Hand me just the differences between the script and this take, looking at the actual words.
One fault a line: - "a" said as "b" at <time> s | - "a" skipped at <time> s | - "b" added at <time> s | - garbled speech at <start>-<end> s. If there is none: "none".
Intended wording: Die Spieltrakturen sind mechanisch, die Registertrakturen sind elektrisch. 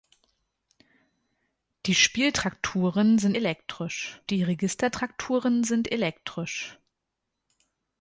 - "mechanisch" said as "elektrisch" at 3.3 s